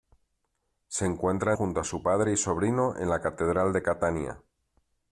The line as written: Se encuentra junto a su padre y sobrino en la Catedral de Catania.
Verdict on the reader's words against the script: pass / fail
pass